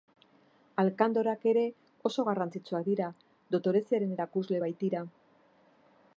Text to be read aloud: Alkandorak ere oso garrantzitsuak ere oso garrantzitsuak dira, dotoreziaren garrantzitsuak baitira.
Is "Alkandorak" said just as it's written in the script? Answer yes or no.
yes